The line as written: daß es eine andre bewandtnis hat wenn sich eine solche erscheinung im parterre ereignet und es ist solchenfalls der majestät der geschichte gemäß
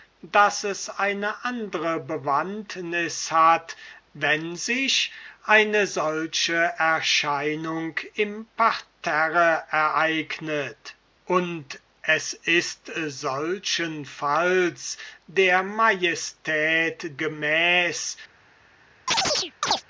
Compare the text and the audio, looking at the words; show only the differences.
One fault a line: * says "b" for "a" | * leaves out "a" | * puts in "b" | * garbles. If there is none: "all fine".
* leaves out "der geschichte"